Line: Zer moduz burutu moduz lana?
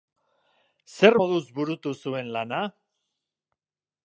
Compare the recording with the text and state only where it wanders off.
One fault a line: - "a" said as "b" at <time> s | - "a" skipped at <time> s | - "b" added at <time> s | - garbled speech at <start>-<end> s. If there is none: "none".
- "moduz" said as "zuen" at 2.0 s